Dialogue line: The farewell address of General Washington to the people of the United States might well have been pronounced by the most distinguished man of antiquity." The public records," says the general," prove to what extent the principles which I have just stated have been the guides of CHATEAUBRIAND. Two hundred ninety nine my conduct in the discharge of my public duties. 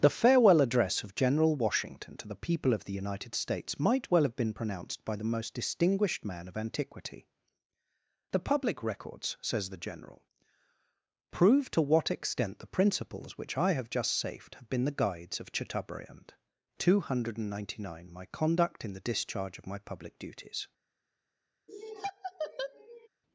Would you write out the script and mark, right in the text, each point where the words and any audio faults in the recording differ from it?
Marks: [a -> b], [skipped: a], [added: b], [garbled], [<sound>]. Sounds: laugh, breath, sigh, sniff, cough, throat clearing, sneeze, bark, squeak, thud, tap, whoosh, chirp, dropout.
The farewell address of General Washington to the people of the United States might well have been pronounced by the most distinguished man of antiquity." The public records," says the general," prove to what extent the principles which I have just [stated -> safed] have been the guides of CHATEAUBRIAND. Two hundred ninety nine my conduct in the discharge of my public duties. [laugh]